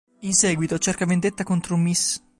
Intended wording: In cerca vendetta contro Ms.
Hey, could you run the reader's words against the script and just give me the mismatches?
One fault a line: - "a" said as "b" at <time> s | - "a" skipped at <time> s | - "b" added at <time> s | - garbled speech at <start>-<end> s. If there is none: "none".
- "seguito" added at 0.3 s